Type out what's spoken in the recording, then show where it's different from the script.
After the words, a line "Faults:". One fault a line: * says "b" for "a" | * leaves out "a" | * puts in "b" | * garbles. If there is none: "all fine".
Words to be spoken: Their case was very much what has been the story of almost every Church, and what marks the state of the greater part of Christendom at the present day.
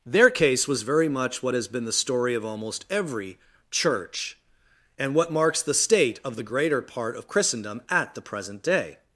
Their case was very much what has been the story of almost every Church, and what marks the state of the greater part of Christendom at the present day.
Faults:
all fine